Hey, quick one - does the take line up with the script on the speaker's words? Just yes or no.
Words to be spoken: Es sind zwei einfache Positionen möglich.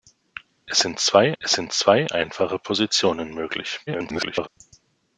no